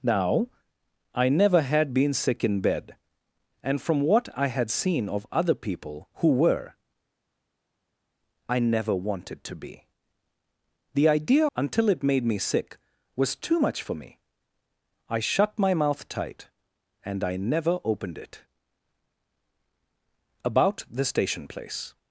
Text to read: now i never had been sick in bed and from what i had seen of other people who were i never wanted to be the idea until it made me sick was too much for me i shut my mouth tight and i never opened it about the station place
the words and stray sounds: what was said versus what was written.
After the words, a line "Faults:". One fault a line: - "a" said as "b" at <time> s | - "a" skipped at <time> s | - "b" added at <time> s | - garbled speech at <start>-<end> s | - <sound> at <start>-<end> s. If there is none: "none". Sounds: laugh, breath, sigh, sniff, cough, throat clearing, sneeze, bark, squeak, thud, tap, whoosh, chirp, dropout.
now i never had been sick in bed and from what i had seen of other people who were i never wanted to be the idea until it made me sick was too much for me i shut my mouth tight and i never opened it about the station place
Faults:
none